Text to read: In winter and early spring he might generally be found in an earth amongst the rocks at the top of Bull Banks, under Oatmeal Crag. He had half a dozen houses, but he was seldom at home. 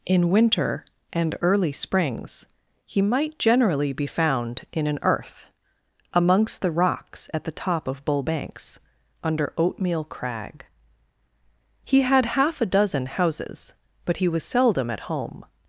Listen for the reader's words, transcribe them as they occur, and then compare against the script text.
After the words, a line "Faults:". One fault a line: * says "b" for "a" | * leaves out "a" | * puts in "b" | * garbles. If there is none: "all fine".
In winter and early springs he might generally be found in an earth amongst the rocks at the top of Bull Banks, under Oatmeal Crag. He had half a dozen houses, but he was seldom at home.
Faults:
* says "springs" for "spring"